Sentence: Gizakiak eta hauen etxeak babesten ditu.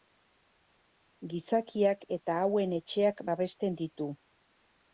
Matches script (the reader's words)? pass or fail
pass